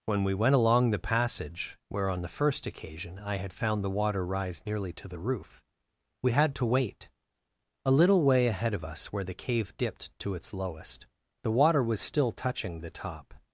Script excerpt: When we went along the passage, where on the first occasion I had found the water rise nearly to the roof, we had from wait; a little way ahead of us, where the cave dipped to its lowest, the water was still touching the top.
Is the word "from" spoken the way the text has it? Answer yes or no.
no